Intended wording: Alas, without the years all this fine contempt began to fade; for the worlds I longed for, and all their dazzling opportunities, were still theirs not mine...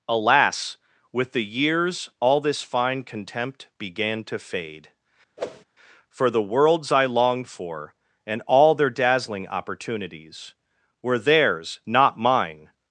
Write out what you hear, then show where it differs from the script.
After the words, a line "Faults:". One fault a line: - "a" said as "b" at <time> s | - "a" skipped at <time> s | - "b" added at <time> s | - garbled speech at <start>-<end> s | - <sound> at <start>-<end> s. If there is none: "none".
Alas, with the years all this fine contempt began to fade; for the worlds I longed for, and all their dazzling opportunities, were theirs not mine...
Faults:
- "without" said as "with" at 1.1 s
- whoosh at 5.4-5.6 s
- "still" skipped at 11.2 s